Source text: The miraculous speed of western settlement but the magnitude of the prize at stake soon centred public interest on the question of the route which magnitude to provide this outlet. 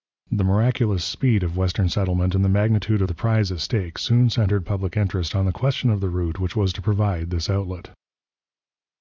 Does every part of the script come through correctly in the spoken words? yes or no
no